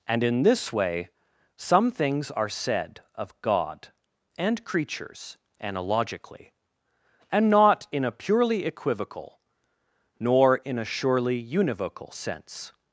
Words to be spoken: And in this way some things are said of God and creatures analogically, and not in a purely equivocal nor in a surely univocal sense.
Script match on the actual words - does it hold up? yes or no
yes